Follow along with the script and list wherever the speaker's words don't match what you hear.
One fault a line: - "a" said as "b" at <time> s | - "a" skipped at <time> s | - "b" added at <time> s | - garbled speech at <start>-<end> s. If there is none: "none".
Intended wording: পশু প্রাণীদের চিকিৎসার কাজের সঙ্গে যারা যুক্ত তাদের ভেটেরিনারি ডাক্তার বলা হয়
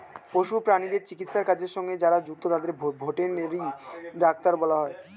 none